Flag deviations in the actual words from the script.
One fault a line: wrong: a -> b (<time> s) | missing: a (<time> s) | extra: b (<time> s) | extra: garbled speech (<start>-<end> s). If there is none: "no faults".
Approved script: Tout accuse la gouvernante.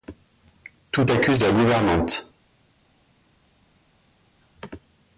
no faults